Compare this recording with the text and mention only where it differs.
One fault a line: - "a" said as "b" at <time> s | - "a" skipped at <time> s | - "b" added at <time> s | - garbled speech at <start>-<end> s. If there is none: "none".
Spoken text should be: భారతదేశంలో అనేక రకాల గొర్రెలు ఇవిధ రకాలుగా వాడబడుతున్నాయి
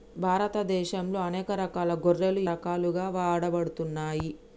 - "ఇవిధ" skipped at 2.4 s